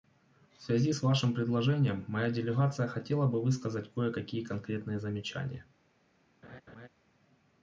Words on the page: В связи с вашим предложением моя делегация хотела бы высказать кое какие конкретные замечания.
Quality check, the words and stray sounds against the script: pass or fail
fail